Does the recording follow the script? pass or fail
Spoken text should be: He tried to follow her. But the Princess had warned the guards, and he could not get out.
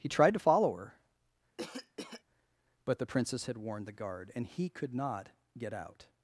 fail